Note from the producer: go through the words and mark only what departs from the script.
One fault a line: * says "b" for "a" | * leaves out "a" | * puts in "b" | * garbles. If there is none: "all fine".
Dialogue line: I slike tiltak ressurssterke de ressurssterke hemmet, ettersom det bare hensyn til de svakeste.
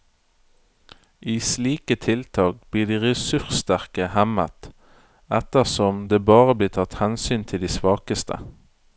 * says "blir" for "ressurssterke"
* puts in "blir tatt"